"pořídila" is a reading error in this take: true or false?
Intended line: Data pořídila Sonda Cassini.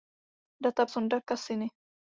true